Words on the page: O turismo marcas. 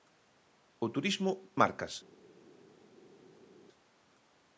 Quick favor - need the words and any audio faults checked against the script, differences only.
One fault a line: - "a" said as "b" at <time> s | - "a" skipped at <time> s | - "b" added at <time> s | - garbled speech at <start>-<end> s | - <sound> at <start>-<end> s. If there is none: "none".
none